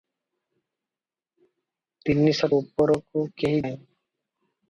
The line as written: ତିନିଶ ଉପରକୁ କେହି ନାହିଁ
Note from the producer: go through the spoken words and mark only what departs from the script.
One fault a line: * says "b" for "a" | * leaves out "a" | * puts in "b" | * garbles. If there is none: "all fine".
all fine